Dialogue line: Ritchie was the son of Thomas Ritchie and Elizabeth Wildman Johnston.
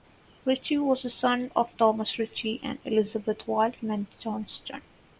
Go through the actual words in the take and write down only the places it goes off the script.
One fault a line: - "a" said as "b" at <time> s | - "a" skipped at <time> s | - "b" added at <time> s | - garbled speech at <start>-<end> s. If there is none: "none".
none